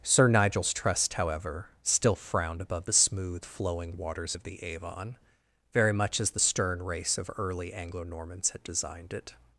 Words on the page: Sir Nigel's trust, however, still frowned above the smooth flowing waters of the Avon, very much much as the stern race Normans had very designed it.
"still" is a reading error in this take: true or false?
false